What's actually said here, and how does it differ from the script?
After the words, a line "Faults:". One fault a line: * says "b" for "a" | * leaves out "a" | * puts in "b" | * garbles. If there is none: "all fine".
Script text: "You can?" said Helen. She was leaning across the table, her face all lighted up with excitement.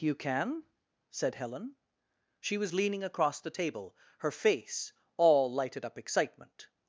"You can?" said Helen. She was leaning across the table, her face all lighted up excitement.
Faults:
* leaves out "with"